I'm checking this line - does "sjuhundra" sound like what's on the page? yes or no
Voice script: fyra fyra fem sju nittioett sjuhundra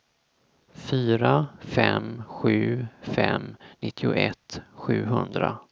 yes